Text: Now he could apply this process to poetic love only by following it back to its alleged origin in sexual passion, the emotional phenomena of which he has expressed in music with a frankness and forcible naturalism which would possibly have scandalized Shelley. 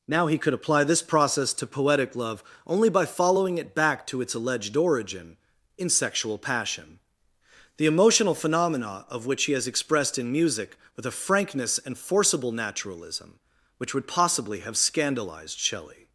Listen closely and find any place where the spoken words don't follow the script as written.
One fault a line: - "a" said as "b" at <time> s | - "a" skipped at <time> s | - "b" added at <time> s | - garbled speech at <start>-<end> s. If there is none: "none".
none